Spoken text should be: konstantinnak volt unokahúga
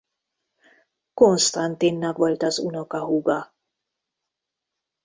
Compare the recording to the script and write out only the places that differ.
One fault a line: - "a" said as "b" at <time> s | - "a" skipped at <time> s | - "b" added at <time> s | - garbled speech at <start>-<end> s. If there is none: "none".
- "az" added at 2.4 s